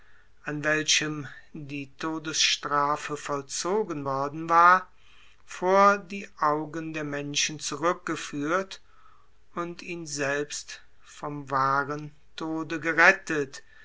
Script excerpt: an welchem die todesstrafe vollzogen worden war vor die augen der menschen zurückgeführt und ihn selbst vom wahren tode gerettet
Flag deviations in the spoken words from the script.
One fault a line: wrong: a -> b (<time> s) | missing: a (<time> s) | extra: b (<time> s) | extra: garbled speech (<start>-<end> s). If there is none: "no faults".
no faults